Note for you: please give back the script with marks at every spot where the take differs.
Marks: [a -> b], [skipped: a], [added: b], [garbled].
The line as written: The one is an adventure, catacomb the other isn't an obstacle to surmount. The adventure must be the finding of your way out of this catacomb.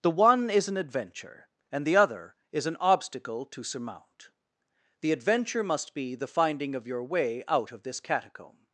The one is an adventure, [catacomb -> and] the other [isn't -> is] an obstacle to surmount. The adventure must be the finding of your way out of this catacomb.